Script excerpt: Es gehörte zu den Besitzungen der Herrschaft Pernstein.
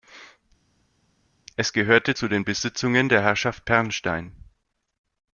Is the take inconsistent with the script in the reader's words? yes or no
no